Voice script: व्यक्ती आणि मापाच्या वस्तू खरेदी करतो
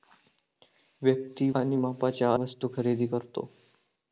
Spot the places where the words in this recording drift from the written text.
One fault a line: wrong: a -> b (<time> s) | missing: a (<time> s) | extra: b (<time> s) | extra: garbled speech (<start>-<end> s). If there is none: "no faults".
no faults